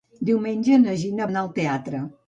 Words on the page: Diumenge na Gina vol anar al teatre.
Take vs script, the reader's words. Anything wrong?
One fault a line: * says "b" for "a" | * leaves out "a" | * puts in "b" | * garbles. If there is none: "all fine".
* leaves out "vol"